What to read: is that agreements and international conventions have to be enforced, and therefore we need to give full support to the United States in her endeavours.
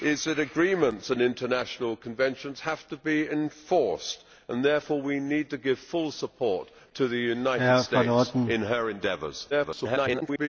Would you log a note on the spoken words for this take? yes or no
yes